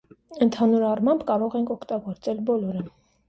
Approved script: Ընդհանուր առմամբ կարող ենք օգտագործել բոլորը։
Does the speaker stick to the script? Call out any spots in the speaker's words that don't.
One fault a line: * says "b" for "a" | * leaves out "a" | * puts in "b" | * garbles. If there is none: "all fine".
all fine